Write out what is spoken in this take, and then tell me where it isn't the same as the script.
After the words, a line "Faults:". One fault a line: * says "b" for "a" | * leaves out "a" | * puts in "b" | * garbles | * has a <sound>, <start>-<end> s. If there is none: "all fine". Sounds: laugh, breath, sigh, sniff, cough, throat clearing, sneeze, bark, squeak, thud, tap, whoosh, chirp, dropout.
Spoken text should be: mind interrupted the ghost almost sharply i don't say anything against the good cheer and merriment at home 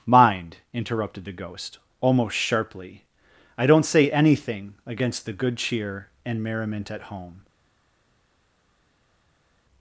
mind interrupted the ghost almost sharply i don't say anything against the good cheer and merriment at home
Faults:
all fine